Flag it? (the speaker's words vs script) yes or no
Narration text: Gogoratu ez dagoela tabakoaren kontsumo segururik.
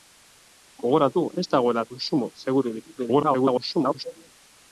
yes